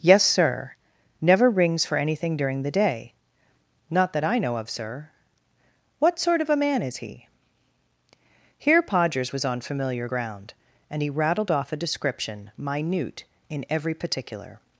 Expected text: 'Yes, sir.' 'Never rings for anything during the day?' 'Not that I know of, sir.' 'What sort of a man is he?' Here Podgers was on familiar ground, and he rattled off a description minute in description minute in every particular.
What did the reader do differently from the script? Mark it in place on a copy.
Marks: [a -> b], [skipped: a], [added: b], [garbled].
'Yes, sir.' 'Never rings for anything during the day?' 'Not that I know of, sir.' 'What sort of a man is he?' Here Podgers was on familiar ground, and he rattled off a description minute in [skipped: description minute in] every particular.